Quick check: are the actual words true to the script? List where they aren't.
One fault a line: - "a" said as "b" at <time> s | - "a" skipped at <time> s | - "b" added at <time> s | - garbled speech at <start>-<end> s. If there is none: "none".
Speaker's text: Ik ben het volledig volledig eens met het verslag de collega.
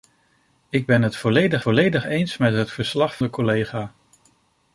none